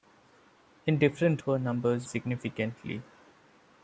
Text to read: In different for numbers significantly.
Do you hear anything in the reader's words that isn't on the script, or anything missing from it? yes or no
no